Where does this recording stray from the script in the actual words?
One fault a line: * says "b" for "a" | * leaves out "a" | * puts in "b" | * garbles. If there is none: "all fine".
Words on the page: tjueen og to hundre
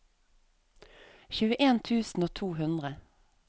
* puts in "tusen"